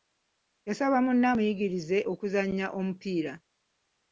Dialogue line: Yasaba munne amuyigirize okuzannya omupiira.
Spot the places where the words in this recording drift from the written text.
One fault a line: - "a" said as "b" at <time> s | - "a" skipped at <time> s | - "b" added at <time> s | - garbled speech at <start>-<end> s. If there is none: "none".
none